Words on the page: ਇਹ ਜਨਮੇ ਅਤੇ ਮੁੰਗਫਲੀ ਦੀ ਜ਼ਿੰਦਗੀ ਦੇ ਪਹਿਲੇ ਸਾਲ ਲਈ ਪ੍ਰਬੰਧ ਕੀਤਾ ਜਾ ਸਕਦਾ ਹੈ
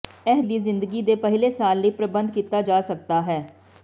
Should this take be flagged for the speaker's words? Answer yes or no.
yes